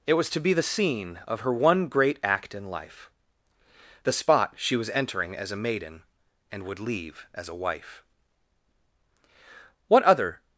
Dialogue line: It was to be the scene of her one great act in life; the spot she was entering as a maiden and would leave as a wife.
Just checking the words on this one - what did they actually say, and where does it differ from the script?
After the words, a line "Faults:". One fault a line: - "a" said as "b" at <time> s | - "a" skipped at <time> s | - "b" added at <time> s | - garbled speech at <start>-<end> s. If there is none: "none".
It was to be the scene of her one great act in life; the spot she was entering as a maiden and would leave as a wife. What other
Faults:
- "What other" added at 9.9 s